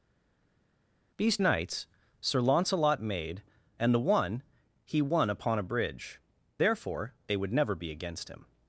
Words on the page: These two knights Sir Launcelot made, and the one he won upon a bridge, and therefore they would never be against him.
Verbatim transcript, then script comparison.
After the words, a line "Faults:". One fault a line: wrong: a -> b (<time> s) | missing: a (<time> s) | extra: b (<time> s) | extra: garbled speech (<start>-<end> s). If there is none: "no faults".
These knights Sir Launcelot made, and the one he won upon a bridge, therefore they would never be against him.
Faults:
missing: two (1.4 s)
missing: and (6.2 s)